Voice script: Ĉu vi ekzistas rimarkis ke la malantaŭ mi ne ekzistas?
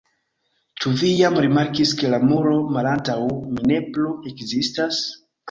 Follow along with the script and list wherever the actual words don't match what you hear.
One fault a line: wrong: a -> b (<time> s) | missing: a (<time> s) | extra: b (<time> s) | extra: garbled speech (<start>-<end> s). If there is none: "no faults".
wrong: ekzistas -> jam (1.2 s)
extra: muro (2.3 s)
extra: plu (3.9 s)